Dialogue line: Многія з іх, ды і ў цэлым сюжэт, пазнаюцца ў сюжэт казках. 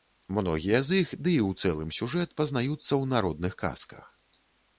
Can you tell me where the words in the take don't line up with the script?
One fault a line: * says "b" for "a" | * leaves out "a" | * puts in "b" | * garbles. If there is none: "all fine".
* says "народных" for "сюжэт"